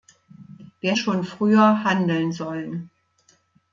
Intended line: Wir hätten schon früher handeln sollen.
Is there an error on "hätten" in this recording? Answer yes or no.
yes